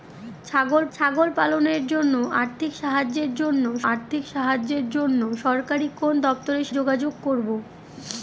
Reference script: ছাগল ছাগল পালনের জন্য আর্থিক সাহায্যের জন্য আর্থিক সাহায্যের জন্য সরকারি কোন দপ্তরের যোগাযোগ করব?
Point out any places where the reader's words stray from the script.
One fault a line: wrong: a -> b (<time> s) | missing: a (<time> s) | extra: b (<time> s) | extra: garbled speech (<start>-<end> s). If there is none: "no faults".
no faults